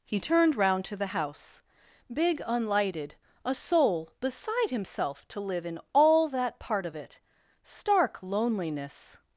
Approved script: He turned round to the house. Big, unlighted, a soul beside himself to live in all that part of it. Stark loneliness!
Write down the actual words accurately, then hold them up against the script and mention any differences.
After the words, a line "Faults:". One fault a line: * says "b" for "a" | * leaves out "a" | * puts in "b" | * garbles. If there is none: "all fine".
He turned round to the house. Big, unlighted, a soul beside himself to live in all that part of it. Stark loneliness!
Faults:
all fine